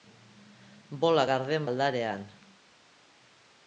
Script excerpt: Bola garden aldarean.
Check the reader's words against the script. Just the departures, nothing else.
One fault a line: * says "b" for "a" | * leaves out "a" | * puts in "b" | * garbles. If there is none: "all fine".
all fine